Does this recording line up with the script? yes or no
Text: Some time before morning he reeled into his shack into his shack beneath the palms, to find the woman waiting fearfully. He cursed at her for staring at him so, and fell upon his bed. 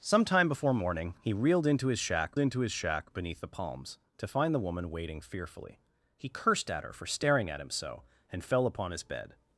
yes